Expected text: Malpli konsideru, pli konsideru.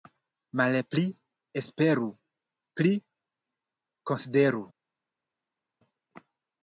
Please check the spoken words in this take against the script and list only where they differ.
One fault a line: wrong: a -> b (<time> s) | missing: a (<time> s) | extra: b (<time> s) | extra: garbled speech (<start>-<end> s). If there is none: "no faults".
wrong: konsideru -> esperu (1.6 s)